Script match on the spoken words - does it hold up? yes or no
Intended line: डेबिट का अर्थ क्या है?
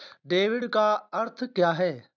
yes